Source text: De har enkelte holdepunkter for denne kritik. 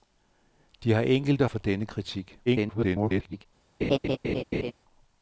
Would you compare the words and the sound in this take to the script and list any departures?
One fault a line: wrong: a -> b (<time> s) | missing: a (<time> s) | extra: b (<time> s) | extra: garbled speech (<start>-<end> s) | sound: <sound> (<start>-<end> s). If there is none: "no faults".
missing: holdepunkter (1.4 s)
extra: garbled speech (2.5-3.5 s)
sound: laugh (3.8-4.7 s)